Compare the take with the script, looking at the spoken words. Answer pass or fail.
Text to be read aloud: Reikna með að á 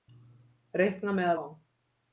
pass